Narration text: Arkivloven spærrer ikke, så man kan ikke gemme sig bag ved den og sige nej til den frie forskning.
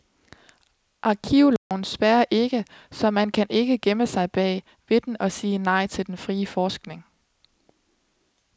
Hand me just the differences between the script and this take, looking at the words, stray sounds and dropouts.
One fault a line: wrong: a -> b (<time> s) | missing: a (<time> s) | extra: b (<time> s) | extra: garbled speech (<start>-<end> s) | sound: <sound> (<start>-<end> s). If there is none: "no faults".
sound: dropout (1.6-1.7 s)